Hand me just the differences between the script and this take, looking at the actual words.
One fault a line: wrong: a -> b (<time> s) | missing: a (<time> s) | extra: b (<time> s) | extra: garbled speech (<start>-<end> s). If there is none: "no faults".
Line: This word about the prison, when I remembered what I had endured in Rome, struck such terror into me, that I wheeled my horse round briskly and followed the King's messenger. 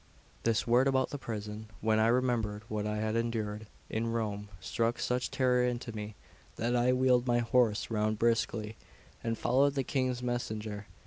no faults